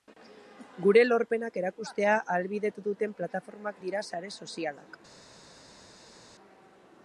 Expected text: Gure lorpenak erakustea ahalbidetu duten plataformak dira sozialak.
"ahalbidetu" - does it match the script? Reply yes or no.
yes